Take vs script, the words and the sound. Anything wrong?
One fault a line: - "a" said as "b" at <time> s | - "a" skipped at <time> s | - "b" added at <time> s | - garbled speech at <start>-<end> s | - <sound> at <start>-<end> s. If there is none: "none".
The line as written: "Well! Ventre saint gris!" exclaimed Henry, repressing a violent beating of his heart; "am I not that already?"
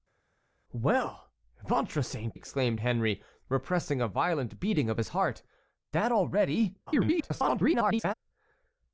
- "gris" skipped at 2.4 s
- "am I not" skipped at 5.4 s
- garbled speech at 6.9-8.1 s